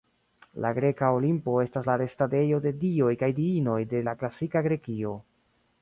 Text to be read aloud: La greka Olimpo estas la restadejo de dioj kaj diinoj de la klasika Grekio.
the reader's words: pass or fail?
pass